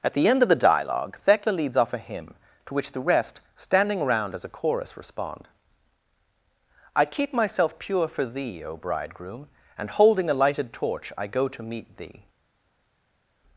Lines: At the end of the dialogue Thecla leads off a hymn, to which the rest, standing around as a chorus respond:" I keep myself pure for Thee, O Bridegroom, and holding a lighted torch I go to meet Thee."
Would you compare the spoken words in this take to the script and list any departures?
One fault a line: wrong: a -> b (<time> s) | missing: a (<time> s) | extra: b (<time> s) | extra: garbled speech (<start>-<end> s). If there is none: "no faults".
no faults